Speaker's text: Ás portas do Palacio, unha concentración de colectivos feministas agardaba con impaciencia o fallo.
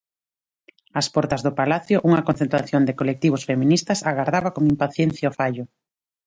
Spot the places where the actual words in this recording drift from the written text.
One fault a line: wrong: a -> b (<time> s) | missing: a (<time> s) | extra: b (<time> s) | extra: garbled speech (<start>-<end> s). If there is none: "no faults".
no faults